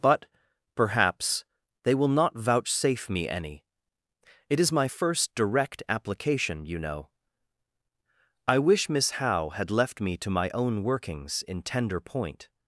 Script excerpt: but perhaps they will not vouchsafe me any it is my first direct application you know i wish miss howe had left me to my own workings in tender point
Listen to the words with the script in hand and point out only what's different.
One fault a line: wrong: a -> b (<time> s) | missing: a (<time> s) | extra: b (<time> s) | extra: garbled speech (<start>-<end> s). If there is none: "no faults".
no faults